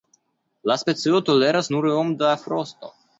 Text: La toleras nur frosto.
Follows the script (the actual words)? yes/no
no